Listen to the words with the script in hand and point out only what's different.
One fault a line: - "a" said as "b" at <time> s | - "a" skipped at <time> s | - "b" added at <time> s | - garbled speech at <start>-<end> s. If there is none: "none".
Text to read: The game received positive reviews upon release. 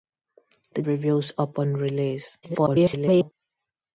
- "game received positive" skipped at 0.8 s
- garbled speech at 2.4-3.3 s